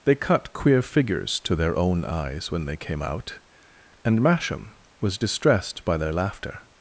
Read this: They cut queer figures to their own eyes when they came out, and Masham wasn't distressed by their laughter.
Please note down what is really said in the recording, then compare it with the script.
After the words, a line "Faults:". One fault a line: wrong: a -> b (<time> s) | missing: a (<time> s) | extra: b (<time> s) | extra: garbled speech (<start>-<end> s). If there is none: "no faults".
They cut queer figures to their own eyes when they came out, and Masham was distressed by their laughter.
Faults:
wrong: wasn't -> was (5.0 s)